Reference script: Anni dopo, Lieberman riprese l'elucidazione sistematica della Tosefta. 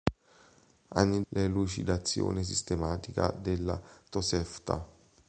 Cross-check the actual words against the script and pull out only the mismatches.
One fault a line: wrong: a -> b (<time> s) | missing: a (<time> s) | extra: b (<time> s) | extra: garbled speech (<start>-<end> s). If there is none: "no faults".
missing: dopo Lieberman riprese (1.2 s)